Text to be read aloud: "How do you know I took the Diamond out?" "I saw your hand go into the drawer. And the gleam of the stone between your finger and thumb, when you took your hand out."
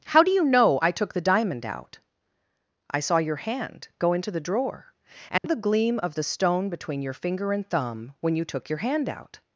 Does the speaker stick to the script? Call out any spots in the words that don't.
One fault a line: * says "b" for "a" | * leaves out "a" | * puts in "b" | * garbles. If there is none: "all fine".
all fine